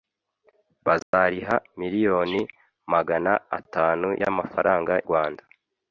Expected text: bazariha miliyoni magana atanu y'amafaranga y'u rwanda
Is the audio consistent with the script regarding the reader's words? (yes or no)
no